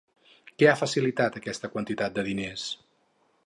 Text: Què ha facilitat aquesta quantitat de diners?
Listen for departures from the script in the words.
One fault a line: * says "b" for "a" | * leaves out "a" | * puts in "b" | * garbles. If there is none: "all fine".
all fine